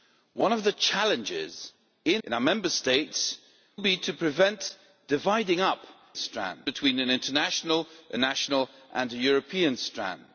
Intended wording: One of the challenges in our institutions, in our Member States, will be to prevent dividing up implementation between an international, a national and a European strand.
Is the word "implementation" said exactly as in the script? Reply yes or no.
no